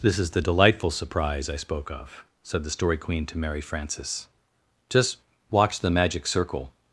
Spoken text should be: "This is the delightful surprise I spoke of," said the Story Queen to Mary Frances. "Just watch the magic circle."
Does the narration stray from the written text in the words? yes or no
no